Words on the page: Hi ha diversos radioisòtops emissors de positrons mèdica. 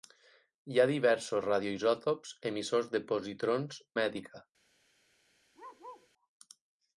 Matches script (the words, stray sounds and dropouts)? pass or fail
fail